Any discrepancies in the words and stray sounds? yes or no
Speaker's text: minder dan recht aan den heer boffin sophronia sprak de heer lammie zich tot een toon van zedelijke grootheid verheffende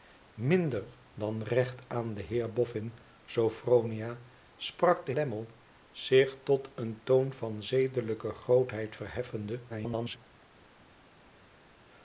yes